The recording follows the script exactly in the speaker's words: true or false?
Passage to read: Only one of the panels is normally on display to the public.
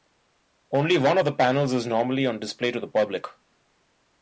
true